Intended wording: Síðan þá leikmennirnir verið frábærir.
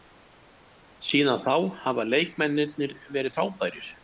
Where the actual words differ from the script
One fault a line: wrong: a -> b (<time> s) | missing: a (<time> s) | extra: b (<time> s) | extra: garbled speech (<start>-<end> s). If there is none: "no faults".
extra: hafa (1.8 s)